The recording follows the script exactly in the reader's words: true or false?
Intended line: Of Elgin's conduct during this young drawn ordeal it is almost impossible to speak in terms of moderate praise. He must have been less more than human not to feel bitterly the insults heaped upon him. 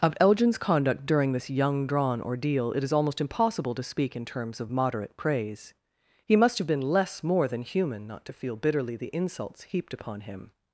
true